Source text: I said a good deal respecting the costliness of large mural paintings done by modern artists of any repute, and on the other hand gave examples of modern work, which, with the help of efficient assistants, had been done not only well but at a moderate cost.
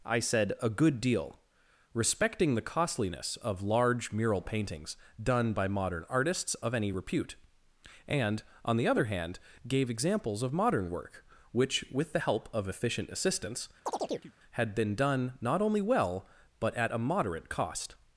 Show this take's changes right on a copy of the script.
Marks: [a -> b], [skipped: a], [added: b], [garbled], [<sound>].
I said a good deal respecting the costliness of large mural paintings done by modern artists of any repute, and on the other hand gave examples of modern work, which, with the help of efficient assistants, [chirp] had been done not only well but at a moderate cost.